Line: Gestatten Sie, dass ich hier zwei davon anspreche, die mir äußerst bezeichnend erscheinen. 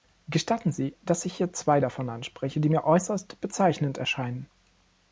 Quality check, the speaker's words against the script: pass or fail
pass